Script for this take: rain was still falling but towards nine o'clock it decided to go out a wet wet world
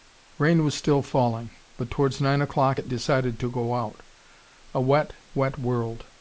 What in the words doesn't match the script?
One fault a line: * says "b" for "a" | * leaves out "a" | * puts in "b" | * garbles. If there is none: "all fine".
all fine